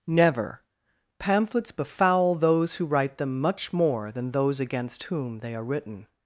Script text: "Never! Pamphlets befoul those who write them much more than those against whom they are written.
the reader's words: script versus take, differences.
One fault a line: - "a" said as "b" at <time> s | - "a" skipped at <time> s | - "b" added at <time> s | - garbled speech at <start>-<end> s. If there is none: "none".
none